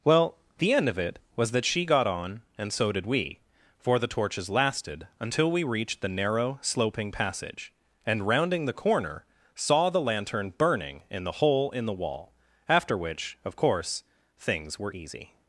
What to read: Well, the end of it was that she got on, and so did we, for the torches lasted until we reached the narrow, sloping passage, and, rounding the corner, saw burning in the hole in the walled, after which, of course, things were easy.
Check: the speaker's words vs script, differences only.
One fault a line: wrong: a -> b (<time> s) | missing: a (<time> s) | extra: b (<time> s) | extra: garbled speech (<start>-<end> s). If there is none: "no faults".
extra: the lantern (9.9 s)
wrong: walled -> wall (11.9 s)